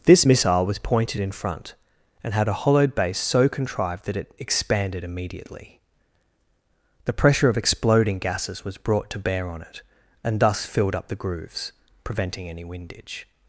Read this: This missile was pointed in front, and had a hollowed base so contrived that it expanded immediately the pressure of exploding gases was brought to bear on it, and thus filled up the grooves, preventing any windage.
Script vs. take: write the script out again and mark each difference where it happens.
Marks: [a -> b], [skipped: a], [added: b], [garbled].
This missile was pointed in front, and had a hollowed base so contrived that it expanded immediately the pressure of exploding gases was brought to bear on it, and thus filled up the grooves, preventing any windage.